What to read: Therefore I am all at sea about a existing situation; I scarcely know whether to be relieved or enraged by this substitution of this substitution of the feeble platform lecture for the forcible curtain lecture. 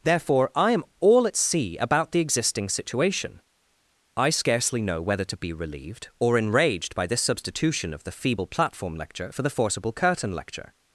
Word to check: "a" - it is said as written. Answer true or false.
false